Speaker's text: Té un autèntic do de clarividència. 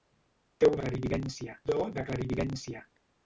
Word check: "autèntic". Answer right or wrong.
wrong